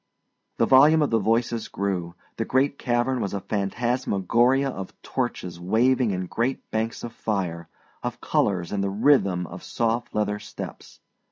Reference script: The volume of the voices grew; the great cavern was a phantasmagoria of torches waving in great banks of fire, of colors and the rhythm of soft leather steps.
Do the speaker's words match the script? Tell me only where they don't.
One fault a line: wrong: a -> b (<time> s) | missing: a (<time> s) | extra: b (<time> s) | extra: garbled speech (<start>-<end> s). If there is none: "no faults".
no faults